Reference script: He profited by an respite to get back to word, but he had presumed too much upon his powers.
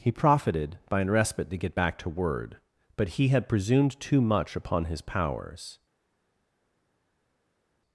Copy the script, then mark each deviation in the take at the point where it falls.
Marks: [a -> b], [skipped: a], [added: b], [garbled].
He profited by an respite to get back to word, but he had presumed too much upon his powers.